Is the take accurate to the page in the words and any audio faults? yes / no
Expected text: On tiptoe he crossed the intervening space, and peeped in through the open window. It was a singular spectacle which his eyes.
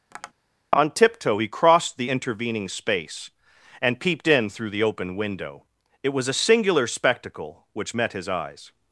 no